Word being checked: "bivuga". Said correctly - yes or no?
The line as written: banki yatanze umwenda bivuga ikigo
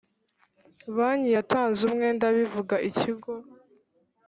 yes